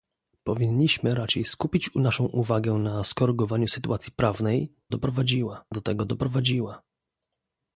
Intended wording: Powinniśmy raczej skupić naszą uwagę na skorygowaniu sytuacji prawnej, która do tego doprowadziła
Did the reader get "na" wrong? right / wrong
right